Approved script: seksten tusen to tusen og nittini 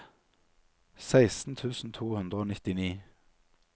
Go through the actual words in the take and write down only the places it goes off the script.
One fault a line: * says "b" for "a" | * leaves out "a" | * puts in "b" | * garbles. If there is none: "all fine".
* says "hundre" for "tusen"